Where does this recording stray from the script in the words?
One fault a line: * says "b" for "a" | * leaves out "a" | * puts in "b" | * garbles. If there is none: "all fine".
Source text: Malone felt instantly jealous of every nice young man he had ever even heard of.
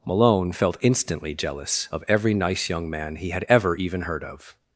all fine